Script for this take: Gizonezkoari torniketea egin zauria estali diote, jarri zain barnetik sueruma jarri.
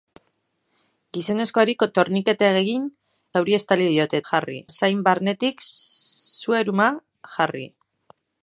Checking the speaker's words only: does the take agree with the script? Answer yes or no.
yes